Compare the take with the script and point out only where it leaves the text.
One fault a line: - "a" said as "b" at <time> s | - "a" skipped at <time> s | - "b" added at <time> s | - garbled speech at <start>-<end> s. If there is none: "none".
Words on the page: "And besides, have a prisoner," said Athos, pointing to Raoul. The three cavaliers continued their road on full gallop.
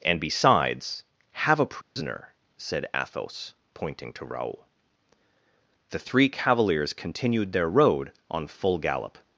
none